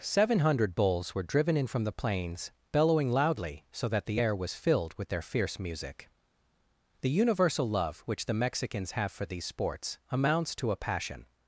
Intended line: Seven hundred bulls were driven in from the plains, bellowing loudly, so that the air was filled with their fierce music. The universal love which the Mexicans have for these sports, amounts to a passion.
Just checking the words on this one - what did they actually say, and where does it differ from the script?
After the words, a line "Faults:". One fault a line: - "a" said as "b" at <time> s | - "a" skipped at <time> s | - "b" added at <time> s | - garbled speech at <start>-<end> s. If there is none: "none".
Seven hundred bulls were driven in from the plains, bellowing loudly, so that the air was filled with their fierce music. The universal love which the Mexicans have for these sports, amounts to a passion.
Faults:
none